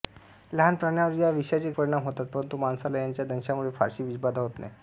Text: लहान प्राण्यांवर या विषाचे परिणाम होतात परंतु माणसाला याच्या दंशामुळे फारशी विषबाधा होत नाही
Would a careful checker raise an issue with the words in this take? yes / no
no